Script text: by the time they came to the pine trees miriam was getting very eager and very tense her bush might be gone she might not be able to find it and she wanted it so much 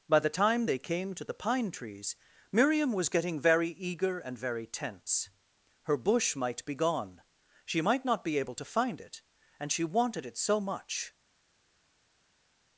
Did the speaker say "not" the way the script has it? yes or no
yes